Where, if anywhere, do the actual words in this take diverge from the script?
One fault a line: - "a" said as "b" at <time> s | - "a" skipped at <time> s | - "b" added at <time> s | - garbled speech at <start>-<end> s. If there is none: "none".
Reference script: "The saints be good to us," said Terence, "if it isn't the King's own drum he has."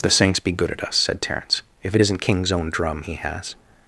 - "to" said as "at" at 0.7 s
- "the" skipped at 2.2 s